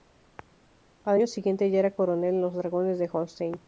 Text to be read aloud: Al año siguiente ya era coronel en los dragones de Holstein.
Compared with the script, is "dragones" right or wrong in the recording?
right